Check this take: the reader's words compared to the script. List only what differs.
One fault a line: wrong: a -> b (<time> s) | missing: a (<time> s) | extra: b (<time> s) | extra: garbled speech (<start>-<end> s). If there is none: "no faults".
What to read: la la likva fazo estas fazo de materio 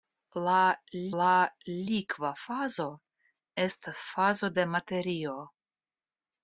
no faults